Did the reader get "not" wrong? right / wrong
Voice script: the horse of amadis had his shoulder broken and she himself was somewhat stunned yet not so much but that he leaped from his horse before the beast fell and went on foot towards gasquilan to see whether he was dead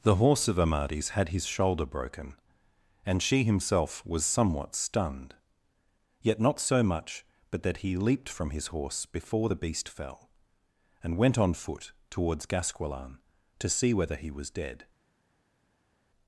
right